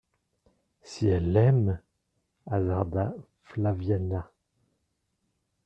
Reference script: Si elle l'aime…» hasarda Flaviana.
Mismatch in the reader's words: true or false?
false